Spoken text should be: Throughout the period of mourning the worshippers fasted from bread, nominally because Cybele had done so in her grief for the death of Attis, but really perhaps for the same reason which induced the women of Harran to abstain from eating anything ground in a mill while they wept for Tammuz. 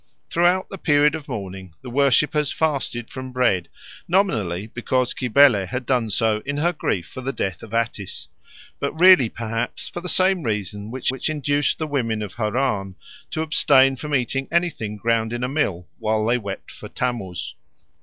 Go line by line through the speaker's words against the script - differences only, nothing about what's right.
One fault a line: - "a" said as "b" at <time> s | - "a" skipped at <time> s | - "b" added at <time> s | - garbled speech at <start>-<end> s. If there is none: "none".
- "which" added at 11.1 s